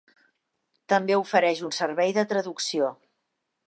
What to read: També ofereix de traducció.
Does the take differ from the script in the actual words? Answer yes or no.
yes